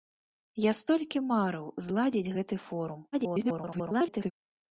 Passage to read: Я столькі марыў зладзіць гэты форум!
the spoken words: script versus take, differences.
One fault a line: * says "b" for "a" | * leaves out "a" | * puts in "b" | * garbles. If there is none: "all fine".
* garbles